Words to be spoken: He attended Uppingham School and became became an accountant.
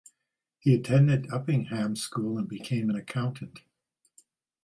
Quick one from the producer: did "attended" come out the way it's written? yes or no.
yes